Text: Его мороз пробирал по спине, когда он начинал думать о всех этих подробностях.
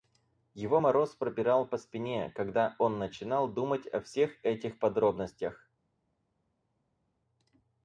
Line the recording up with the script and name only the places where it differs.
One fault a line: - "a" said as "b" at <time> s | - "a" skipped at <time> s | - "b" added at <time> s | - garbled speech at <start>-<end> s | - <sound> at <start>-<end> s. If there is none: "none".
none